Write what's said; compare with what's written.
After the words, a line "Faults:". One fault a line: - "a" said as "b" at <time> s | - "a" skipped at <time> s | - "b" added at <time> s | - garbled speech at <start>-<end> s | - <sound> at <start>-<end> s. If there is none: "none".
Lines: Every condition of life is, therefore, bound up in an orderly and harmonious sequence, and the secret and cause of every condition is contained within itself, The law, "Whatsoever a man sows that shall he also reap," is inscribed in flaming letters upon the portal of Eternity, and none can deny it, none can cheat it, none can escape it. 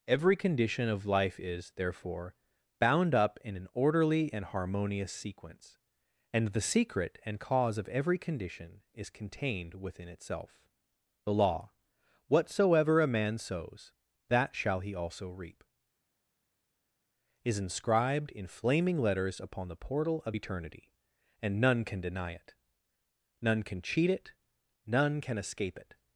Every condition of life is, therefore, bound up in an orderly and harmonious sequence, and the secret and cause of every condition is contained within itself, The law, "Whatsoever a man sows that shall he also reap," is inscribed in flaming letters upon the portal of Eternity, and none can deny it, none can cheat it, none can escape it.
Faults:
none